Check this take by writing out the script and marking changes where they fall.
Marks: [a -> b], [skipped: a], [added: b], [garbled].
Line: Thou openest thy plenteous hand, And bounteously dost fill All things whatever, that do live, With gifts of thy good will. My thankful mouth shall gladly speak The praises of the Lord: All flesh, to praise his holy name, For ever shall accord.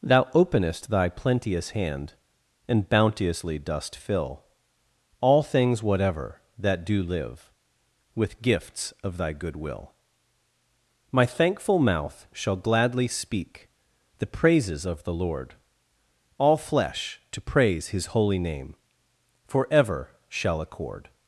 Thou openest thy plenteous hand, And bounteously dost fill All things whatever, that do live, With gifts of thy good will. My thankful mouth shall gladly speak The praises of the Lord: All flesh, to praise his holy name, For ever shall accord.